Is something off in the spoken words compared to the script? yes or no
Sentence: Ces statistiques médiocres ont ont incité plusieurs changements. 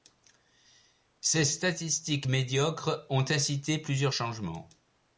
yes